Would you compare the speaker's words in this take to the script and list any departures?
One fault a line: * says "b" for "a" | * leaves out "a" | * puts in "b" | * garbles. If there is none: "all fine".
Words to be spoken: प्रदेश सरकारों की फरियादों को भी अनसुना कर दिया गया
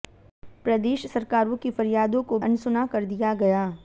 * leaves out "भी"